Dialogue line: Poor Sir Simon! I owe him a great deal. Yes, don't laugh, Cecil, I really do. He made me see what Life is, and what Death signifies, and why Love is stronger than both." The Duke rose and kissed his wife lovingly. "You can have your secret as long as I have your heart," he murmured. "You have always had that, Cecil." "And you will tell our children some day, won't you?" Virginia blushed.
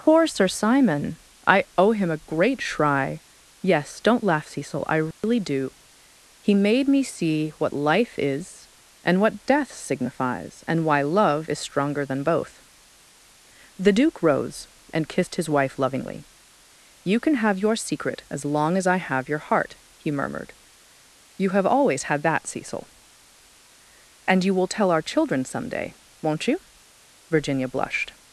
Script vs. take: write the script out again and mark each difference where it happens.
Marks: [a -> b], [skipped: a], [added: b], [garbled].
Poor Sir Simon! I owe him a great [deal. -> shry] Yes, don't laugh, Cecil, I really do. He made me see what Life is, and what Death signifies, and why Love is stronger than both." The Duke rose and kissed his wife lovingly. "You can have your secret as long as I have your heart," he murmured. "You have always had that, Cecil." "And you will tell our children some day, won't you?" Virginia blushed.